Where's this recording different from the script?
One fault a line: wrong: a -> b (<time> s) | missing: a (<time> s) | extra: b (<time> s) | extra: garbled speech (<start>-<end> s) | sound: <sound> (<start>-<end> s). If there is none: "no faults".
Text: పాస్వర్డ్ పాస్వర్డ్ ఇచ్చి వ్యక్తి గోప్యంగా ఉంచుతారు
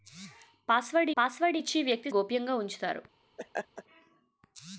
sound: laugh (3.4-3.8 s)